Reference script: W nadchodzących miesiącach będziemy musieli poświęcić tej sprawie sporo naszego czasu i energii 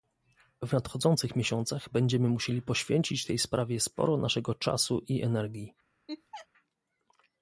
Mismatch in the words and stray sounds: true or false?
true